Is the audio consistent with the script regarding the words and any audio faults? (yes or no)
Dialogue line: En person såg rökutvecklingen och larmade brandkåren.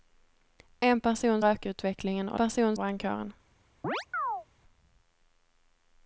no